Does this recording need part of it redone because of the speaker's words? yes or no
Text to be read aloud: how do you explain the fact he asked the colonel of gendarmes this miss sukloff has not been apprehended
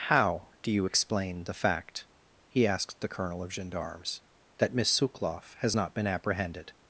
yes